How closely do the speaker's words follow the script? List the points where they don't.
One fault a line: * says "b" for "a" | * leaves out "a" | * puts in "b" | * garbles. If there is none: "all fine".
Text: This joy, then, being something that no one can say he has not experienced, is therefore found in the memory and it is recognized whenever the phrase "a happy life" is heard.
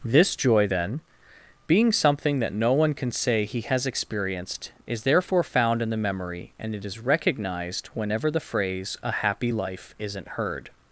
* leaves out "not"
* says "isn't" for "is"